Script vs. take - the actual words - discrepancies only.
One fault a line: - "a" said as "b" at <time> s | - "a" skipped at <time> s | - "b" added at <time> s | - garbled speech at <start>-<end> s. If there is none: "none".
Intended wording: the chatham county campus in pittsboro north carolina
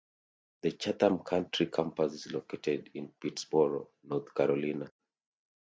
- "is located" added at 2.1 s